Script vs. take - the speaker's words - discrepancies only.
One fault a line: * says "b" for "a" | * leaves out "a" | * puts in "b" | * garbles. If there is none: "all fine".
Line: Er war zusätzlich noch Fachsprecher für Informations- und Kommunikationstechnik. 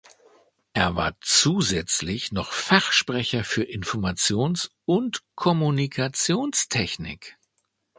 all fine